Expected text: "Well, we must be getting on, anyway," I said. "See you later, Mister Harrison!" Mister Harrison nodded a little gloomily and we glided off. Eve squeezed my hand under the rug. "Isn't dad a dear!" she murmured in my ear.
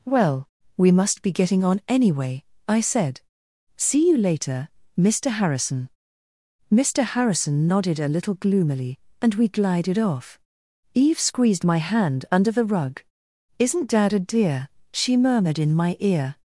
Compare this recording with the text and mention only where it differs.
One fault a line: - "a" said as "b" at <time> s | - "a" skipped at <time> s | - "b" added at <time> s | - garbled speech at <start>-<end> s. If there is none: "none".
none